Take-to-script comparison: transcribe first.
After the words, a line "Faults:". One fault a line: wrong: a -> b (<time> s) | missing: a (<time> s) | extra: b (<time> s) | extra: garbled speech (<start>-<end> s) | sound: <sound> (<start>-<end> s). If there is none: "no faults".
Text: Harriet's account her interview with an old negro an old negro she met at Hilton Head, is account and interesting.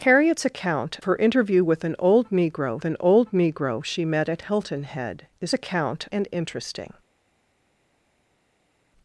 Harriet's account her interview with an old negro an old negro she met at Hilton Head, is account and interesting.
Faults:
no faults